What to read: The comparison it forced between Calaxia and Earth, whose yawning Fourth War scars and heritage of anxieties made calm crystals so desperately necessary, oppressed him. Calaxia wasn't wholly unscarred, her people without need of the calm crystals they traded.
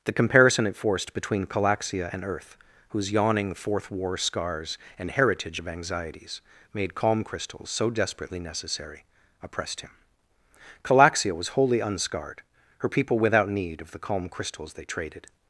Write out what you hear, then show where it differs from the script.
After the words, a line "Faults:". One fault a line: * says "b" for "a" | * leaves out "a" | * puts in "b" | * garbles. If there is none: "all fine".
The comparison it forced between Calaxia and Earth, whose yawning Fourth War scars and heritage of anxieties made calm crystals so desperately necessary, oppressed him. Calaxia was wholly unscarred, her people without need of the calm crystals they traded.
Faults:
* says "was" for "wasn't"